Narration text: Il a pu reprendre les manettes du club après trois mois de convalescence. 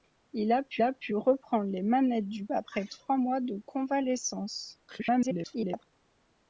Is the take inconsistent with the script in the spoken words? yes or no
yes